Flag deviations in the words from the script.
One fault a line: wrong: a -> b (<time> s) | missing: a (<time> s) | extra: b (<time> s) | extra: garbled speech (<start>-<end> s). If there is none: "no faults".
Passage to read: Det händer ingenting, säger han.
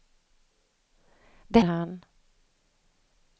missing: händer ingenting säger (1.6 s)